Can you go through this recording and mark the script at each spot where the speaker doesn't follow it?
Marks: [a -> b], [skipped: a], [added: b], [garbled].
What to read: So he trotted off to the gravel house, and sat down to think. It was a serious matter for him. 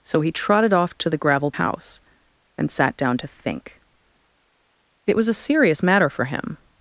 So he trotted off to the gravel house, and sat down to think. It was a serious matter for him.